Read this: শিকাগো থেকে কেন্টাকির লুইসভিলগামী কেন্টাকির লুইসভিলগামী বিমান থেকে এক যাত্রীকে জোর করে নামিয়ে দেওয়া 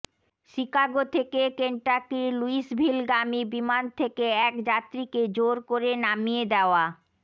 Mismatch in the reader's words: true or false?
true